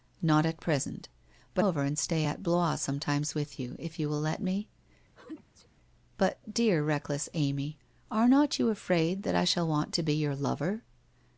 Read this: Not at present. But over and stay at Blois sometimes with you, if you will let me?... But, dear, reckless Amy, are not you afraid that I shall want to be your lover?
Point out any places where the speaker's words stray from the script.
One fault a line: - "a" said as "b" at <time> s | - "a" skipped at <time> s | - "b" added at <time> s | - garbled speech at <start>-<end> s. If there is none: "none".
none